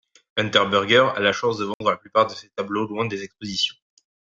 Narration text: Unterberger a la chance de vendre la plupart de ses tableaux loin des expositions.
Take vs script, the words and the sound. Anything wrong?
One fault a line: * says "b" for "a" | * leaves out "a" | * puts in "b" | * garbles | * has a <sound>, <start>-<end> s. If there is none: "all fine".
* has a dropout, 1.7-1.8 s